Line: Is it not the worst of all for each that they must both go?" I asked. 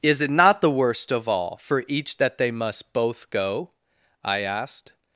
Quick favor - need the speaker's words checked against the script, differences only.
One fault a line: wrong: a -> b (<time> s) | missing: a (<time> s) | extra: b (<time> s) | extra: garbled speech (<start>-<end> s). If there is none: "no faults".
no faults